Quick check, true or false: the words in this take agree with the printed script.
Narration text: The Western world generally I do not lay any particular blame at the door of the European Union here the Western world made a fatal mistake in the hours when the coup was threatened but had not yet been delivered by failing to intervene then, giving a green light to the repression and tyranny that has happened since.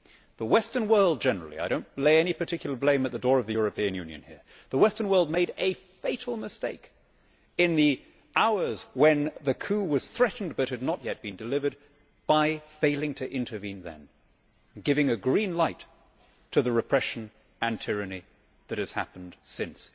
true